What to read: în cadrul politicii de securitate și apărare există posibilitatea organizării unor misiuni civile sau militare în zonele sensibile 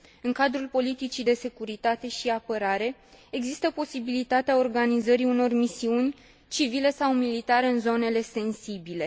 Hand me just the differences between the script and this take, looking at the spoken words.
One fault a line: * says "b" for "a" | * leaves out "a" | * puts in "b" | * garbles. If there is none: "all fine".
all fine